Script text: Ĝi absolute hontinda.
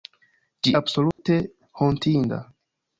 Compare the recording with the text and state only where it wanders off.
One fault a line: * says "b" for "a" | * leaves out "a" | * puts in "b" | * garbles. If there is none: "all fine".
all fine